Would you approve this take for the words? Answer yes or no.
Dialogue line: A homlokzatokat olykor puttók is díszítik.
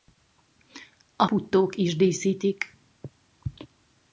no